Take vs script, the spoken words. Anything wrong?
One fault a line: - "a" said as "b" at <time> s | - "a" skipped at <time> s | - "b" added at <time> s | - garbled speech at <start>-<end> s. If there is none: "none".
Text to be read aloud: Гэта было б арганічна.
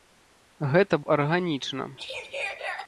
- "было" skipped at 0.9 s